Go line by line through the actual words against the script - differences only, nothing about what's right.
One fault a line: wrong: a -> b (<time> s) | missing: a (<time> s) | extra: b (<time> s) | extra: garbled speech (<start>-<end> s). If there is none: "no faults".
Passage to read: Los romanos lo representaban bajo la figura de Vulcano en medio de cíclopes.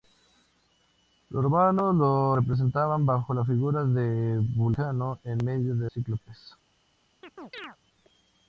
no faults